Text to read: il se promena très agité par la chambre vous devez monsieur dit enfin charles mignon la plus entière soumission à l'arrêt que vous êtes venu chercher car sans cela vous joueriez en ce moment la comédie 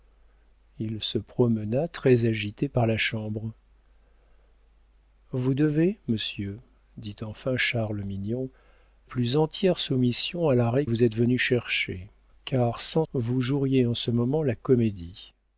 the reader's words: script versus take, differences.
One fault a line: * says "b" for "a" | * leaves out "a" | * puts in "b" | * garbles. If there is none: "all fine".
* leaves out "la"
* leaves out "que"
* leaves out "cela"